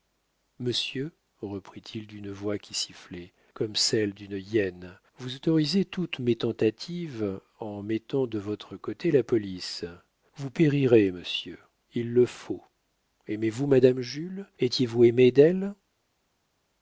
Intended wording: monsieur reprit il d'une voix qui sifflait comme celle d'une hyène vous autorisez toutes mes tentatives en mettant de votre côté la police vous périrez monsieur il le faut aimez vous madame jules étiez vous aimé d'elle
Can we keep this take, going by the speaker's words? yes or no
yes